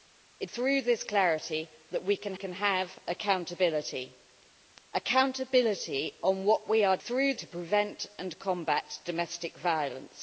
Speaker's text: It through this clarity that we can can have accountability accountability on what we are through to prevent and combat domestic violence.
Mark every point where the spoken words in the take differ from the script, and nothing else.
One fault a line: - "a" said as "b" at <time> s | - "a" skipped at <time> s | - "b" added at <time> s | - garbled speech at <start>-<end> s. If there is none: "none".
none